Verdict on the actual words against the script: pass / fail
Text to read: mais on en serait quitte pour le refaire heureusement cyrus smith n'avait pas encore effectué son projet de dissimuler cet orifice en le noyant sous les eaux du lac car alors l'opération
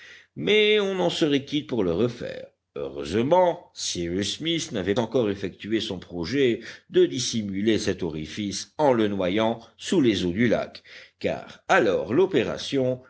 fail